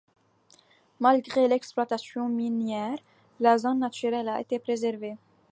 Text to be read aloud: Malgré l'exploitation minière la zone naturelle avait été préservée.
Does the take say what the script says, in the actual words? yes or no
no